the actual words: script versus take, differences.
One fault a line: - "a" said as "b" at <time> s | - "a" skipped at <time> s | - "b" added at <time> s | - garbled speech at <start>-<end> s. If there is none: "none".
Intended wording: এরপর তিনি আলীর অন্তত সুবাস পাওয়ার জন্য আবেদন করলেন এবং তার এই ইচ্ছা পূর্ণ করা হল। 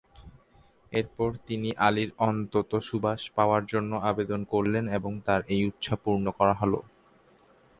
none